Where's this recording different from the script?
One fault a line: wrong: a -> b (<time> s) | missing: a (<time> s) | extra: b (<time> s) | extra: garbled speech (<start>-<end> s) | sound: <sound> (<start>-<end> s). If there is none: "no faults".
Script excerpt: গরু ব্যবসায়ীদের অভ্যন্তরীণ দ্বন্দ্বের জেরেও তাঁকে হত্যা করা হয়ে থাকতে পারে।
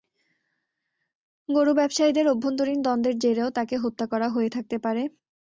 no faults